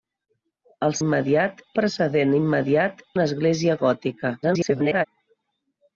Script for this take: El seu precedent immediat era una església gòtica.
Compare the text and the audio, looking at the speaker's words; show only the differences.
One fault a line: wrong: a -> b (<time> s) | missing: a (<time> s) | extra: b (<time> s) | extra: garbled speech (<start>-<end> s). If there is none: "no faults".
wrong: seu -> immediat (1.0 s)
missing: era (3.0 s)
extra: garbled speech (4.4-5.1 s)